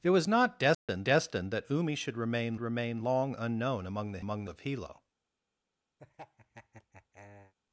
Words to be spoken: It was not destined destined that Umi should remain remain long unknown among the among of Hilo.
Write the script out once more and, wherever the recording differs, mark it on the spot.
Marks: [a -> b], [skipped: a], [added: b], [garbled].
It was not destined destined that Umi should remain remain long unknown among the among of Hilo.